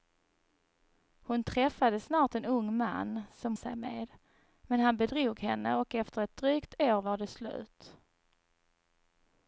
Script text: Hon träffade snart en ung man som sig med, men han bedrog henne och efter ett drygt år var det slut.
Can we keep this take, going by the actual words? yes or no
yes